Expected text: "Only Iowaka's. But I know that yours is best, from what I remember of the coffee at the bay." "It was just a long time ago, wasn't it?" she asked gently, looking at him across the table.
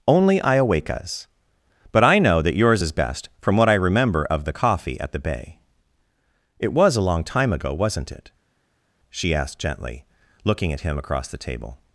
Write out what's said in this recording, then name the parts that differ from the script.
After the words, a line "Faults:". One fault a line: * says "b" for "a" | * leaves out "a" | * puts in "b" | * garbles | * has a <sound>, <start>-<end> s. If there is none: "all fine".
"Only Iowaka's. But I know that yours is best, from what I remember of the coffee at the bay." "It was a long time ago, wasn't it?" she asked gently, looking at him across the table.
Faults:
* leaves out "just"